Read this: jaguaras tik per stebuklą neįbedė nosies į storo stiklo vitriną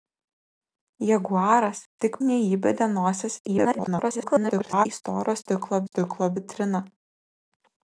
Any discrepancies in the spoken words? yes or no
yes